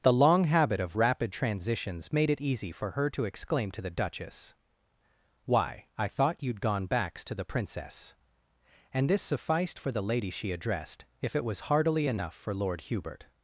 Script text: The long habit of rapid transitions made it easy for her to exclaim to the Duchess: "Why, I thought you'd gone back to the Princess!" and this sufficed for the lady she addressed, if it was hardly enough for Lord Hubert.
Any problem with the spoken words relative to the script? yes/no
yes